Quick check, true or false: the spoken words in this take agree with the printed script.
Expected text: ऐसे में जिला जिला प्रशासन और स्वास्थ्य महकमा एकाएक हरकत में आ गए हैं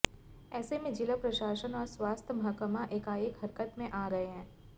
false